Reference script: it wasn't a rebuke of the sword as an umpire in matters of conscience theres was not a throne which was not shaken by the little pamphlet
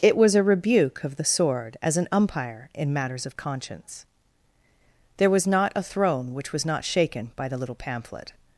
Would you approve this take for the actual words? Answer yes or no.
no